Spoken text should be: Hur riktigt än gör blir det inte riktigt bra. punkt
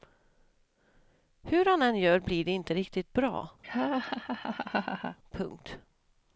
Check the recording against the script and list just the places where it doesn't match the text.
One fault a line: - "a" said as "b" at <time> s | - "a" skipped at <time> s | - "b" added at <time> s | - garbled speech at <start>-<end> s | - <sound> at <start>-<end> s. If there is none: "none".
- "riktigt" said as "han" at 1.6 s
- laugh at 3.6-5.2 s